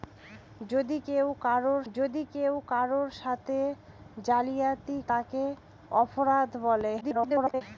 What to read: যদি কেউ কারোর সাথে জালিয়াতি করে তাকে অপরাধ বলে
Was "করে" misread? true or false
true